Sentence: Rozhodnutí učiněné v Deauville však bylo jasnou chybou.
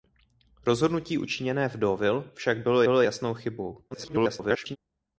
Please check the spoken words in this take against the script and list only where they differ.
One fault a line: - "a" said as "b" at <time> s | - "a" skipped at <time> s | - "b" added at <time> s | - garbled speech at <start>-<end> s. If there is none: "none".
- "bylo" added at 2.8 s
- garbled speech at 3.9-4.8 s